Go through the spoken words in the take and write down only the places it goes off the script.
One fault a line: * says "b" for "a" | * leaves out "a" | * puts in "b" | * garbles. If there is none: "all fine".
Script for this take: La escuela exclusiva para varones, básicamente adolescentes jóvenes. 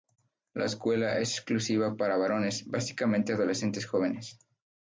* puts in "es"